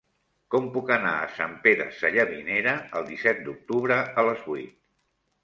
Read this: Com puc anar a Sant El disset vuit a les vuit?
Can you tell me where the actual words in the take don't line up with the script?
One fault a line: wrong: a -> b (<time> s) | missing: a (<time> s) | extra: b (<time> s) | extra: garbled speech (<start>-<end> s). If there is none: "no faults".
extra: Pere Sallavinera (1.7 s)
wrong: vuit -> d'octubre (3.5 s)